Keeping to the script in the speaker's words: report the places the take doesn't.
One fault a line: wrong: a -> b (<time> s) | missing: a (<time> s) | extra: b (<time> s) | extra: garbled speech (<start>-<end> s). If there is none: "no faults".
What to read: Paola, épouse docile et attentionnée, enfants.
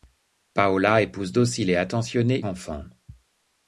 no faults